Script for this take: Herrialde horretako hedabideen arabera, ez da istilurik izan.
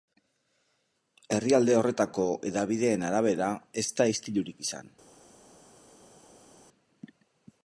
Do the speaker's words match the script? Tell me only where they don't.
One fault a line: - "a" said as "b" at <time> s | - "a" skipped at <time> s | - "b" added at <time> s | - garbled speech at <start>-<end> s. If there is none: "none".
none